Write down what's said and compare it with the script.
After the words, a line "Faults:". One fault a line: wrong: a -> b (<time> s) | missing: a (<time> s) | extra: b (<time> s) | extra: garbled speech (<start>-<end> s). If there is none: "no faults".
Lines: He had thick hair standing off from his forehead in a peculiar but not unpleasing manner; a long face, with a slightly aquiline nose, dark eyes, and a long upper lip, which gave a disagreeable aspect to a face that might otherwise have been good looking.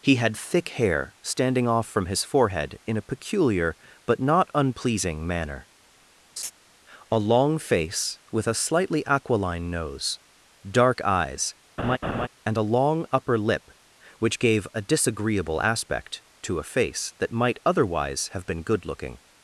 He had thick hair standing off from his forehead in a peculiar but not unpleasing manner; a long face, with a slightly aquiline nose, dark eyes, and a long upper lip, which gave a disagreeable aspect to a face that might otherwise have been good looking.
Faults:
no faults